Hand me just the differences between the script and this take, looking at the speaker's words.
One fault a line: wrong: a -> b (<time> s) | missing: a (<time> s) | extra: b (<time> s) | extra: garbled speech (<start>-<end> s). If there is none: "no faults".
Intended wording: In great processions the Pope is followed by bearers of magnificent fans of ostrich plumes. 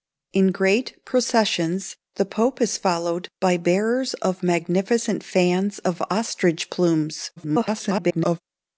extra: garbled speech (7.4-8.4 s)